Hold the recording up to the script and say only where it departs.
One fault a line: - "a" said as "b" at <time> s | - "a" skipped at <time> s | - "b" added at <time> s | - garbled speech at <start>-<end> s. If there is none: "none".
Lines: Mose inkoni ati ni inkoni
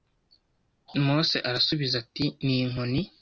- "inkoni" said as "arasubiza" at 1.5 s